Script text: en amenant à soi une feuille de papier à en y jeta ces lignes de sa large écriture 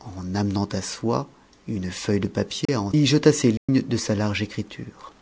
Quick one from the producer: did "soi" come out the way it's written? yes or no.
yes